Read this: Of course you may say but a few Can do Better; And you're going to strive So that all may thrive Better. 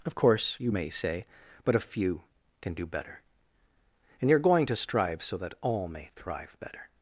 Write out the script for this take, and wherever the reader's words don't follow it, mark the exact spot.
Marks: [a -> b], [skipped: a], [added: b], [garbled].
Of course you may say but a few Can do Better; And you're going to strive So that all may thrive Better.